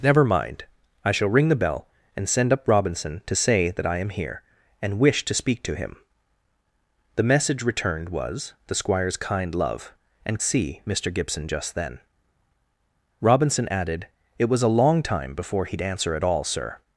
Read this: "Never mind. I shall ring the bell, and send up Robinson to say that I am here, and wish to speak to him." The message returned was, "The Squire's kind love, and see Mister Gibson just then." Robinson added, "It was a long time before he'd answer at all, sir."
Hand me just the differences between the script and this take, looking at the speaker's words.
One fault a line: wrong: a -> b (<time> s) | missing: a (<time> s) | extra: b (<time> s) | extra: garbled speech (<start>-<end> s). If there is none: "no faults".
no faults